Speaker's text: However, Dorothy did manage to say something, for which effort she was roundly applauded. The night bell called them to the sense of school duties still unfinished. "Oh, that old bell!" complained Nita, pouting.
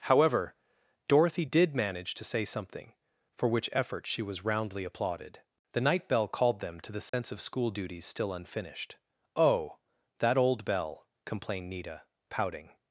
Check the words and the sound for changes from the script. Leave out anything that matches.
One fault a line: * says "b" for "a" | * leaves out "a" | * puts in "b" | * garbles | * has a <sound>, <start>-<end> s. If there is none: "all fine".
* has a dropout, 7.1-7.1 s